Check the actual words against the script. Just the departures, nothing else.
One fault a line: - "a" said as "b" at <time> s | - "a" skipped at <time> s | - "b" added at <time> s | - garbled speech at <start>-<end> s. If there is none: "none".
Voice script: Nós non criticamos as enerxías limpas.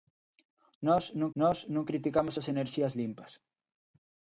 - "nós non" added at 1.4 s